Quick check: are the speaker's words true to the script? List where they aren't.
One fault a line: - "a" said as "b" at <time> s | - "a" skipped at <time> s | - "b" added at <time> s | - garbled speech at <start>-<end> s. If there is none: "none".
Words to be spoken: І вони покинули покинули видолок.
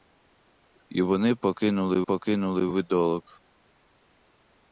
none